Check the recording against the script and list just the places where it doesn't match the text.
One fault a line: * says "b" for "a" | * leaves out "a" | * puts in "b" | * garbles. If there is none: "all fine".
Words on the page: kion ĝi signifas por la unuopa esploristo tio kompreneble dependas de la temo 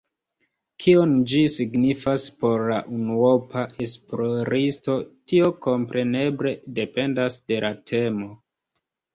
all fine